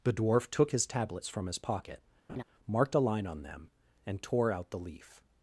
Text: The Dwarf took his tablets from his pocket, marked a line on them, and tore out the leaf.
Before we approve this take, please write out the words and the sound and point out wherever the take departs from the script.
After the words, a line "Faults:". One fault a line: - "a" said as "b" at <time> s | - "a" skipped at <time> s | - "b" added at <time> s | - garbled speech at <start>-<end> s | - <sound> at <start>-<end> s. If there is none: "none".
The Dwarf took his tablets from his pocket, marked a line on them, and tore out the leaf.
Faults:
- laugh at 2.3-2.4 s